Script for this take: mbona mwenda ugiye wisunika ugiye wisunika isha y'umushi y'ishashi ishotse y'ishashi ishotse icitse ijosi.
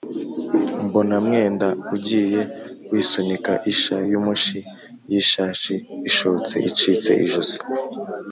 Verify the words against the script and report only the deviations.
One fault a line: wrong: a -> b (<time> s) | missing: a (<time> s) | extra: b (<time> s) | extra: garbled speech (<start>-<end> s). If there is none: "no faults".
missing: ugiye wisunika (3.5 s)
missing: y'ishashi ishotse (6.5 s)